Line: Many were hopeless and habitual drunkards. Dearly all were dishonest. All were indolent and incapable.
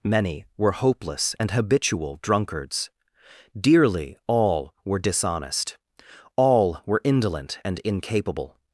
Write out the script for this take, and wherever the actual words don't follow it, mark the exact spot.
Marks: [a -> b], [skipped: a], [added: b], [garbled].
Many were hopeless and habitual drunkards. Dearly all were dishonest. All were indolent and incapable.